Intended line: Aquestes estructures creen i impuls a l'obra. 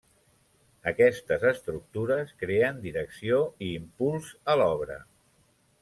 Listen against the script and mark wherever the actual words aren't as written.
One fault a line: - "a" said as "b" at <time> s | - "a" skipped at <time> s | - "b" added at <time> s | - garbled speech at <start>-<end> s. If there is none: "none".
- "direcció" added at 2.9 s